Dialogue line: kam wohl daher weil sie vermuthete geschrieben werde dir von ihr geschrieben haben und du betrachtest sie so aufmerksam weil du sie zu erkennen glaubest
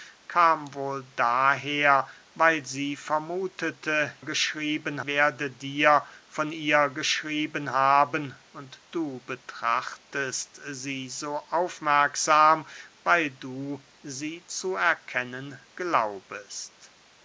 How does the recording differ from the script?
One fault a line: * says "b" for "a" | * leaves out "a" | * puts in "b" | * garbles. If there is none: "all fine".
all fine